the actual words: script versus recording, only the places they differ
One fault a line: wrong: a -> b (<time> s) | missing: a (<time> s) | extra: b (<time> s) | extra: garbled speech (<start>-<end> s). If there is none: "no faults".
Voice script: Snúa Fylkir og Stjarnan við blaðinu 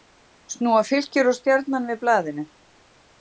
no faults